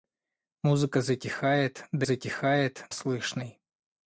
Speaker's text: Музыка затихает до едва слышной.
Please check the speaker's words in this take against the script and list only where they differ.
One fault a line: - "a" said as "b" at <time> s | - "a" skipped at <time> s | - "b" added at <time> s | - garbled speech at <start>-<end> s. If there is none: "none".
- "едва" said as "затихает" at 2.0 s